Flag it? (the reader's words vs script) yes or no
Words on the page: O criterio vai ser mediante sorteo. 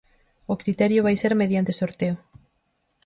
no